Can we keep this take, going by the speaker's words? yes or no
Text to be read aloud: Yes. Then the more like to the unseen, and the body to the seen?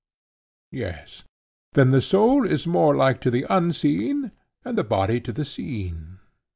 no